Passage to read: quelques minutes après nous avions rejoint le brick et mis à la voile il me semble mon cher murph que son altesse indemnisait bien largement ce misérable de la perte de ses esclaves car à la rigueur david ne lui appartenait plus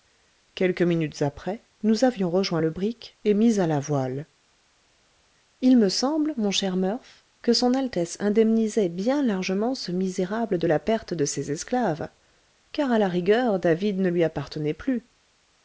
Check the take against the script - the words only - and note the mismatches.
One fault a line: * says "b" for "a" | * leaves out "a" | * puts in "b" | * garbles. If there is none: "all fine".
all fine